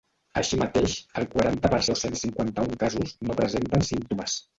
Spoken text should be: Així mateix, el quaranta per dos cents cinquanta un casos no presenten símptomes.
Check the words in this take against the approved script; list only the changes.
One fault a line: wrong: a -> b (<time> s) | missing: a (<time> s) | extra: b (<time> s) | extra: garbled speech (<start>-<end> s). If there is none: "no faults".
no faults